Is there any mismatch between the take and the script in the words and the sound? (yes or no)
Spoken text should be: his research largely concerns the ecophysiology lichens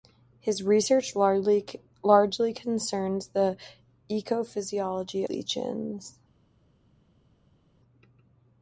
no